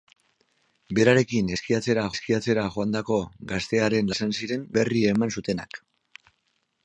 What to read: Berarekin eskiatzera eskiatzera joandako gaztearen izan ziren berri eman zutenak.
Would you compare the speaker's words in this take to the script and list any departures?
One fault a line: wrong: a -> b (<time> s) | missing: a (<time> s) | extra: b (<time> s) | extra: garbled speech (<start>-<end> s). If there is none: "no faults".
no faults